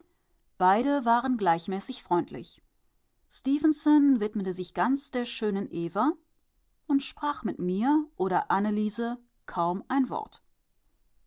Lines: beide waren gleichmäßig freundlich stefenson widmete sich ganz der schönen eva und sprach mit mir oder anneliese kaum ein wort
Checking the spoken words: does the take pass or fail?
pass